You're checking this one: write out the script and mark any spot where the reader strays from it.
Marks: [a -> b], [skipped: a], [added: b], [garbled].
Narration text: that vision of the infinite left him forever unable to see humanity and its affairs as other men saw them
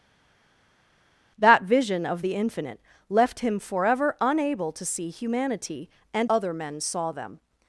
that vision of the infinite left him forever unable to see humanity and [skipped: its affairs as] other men saw them